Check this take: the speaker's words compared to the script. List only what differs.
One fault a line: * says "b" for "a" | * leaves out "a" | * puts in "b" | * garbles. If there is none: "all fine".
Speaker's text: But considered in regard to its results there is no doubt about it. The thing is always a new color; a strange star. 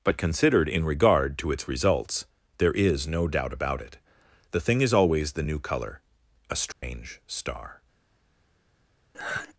* says "the" for "a"